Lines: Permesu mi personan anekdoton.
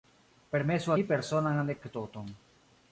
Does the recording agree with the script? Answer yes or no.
yes